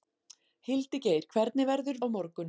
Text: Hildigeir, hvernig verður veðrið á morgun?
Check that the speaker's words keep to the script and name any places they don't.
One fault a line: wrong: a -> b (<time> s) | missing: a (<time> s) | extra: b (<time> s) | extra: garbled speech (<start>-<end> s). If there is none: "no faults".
missing: veðrið (2.0 s)